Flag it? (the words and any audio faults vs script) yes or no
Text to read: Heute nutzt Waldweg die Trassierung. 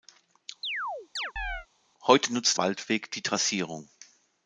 yes